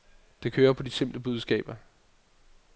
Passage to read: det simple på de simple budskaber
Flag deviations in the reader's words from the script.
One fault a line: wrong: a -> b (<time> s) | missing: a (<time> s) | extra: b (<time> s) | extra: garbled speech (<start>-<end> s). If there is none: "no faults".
wrong: simple -> kører (0.5 s)